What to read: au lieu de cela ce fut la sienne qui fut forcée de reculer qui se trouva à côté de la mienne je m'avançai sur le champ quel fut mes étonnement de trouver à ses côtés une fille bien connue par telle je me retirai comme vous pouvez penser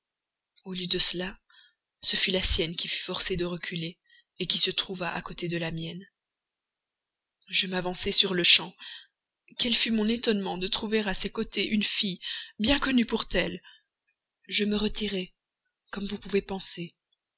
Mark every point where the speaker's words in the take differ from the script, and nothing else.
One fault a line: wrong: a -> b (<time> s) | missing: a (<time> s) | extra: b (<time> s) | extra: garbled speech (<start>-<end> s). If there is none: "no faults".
wrong: mes -> mon (9.9 s)
wrong: par -> pour (13.0 s)